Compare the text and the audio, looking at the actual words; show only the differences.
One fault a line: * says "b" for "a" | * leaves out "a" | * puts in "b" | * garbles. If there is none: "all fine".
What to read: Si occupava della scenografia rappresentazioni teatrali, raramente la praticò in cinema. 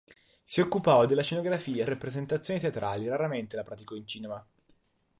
all fine